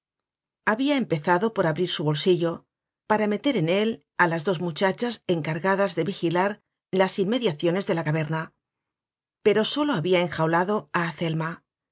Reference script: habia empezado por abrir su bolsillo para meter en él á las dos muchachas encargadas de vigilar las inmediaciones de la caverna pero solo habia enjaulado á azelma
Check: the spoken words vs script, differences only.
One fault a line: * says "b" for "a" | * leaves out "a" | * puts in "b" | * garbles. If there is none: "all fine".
all fine